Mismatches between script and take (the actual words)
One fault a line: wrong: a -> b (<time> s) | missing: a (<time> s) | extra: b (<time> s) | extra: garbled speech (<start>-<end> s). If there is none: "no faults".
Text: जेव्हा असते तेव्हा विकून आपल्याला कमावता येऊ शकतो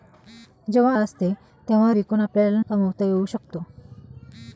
no faults